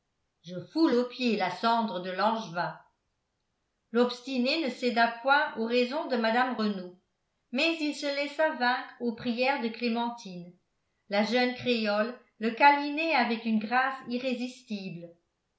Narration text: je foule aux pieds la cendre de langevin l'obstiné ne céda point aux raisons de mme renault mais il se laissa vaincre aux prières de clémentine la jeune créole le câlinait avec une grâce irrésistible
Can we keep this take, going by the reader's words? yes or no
yes